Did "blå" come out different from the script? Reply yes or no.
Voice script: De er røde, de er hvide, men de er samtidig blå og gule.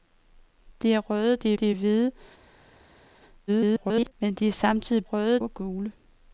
yes